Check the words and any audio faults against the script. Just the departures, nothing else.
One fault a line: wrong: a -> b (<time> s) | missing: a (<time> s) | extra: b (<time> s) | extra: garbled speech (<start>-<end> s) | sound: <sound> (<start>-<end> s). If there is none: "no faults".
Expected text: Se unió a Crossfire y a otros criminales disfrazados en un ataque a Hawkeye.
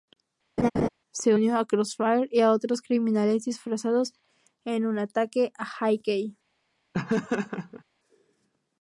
sound: laugh (0.6-0.9 s)
sound: laugh (6.9-7.8 s)